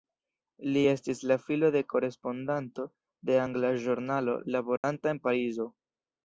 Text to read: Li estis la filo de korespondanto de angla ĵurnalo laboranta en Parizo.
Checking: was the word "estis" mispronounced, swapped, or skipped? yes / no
no